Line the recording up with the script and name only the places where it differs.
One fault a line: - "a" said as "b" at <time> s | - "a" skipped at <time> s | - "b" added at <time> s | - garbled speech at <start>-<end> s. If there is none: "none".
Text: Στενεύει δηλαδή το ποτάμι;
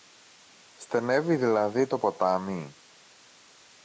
none